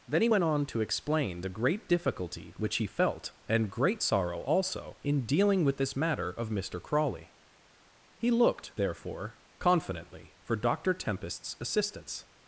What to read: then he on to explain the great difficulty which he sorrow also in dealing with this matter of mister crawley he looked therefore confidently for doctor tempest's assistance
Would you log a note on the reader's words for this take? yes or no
yes